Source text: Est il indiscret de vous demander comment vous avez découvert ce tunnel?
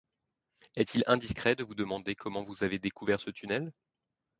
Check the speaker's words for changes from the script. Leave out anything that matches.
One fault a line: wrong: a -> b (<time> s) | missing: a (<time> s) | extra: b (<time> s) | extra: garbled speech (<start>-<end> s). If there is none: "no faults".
no faults